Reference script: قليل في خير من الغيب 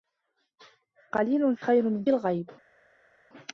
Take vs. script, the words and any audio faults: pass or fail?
pass